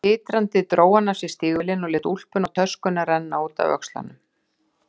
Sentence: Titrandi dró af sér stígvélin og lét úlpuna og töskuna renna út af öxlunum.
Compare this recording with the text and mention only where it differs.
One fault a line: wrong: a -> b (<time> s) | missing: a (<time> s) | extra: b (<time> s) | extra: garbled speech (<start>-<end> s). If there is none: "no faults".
extra: hann (0.9 s)